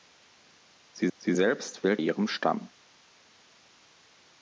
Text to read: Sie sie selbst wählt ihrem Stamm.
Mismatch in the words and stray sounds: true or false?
false